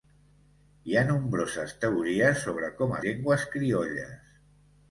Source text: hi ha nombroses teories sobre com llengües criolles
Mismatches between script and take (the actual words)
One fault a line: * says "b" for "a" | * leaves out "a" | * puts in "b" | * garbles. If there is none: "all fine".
all fine